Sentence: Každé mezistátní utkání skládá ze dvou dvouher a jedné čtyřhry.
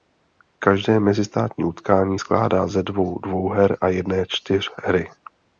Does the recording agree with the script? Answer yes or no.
yes